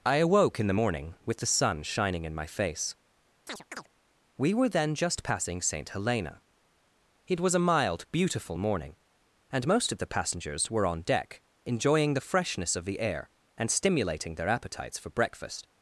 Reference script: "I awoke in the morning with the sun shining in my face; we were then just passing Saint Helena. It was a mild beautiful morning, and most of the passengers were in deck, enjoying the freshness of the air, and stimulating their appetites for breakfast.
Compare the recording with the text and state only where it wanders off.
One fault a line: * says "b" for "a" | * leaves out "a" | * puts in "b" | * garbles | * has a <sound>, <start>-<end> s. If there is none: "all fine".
* has a chirp, 3.5-3.9 s
* says "on" for "in"